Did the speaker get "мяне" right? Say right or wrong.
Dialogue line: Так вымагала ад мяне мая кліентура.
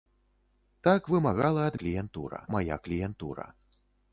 wrong